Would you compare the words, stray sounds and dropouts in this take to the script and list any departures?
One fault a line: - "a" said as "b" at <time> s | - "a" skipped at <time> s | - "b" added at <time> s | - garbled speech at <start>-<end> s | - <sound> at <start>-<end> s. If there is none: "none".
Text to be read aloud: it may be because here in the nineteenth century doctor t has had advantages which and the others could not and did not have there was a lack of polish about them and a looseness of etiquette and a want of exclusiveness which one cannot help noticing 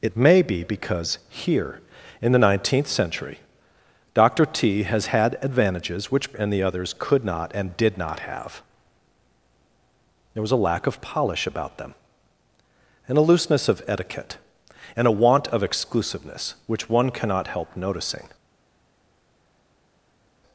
none